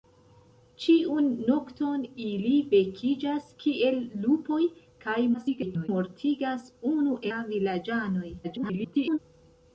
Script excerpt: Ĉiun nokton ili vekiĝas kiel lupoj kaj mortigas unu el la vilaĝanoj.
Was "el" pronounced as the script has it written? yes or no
no